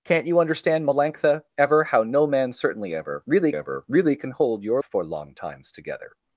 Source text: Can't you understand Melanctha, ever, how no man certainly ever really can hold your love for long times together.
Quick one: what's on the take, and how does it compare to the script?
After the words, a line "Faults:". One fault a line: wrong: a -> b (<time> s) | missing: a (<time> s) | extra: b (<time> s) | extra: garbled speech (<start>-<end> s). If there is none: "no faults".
Can't you understand Melanctha, ever, how no man certainly ever really ever really can hold your for long times together.
Faults:
extra: ever really (3.5 s)
missing: love (4.8 s)